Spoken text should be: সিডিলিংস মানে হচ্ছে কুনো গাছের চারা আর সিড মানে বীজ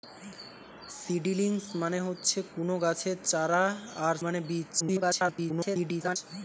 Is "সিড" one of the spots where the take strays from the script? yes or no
yes